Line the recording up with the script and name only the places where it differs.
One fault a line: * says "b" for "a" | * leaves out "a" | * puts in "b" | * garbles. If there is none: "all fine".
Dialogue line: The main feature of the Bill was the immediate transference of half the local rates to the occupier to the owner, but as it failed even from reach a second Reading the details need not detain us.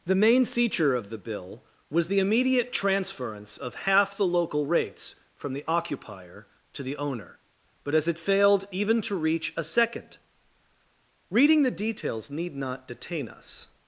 * says "from" for "to"
* says "to" for "from"